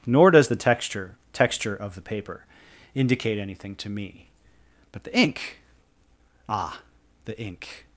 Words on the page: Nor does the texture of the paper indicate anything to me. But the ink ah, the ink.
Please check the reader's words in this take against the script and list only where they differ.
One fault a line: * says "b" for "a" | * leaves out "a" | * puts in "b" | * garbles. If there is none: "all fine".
* puts in "texture"